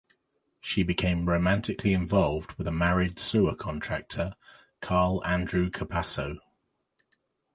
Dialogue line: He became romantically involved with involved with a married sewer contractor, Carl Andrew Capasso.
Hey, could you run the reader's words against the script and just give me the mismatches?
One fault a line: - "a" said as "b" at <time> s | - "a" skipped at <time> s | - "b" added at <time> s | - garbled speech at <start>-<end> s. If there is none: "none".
- "He" said as "She" at 0.6 s
- "involved with" skipped at 2.7 s